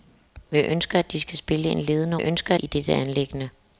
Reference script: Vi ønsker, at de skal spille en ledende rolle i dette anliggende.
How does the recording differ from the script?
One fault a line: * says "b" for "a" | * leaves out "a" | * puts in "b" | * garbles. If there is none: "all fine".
* says "ønsker" for "rolle"